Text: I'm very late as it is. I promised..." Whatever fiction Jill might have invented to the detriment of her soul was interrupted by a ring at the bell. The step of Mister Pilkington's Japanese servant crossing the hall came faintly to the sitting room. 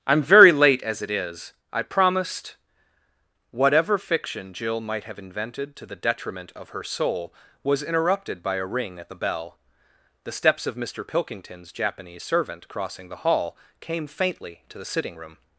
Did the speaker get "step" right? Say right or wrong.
wrong